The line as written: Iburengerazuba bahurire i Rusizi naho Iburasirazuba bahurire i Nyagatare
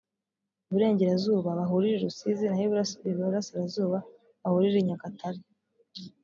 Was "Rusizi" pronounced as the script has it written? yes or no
yes